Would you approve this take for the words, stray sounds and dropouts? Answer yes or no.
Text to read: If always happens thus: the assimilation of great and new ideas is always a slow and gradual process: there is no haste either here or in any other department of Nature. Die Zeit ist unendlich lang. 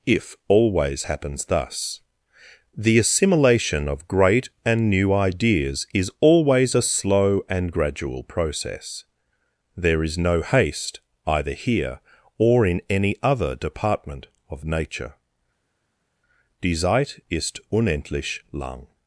yes